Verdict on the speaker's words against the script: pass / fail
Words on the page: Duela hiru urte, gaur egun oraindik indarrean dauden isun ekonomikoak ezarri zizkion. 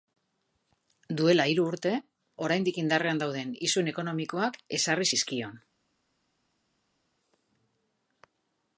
fail